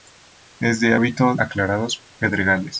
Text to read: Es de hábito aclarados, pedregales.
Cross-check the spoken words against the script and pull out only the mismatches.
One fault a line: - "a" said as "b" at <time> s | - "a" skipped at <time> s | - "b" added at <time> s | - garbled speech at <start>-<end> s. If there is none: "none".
none